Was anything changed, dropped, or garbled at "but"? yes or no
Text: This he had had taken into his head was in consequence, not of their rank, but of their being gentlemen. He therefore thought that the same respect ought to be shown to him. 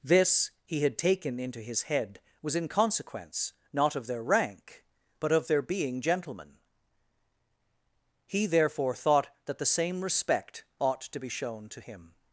no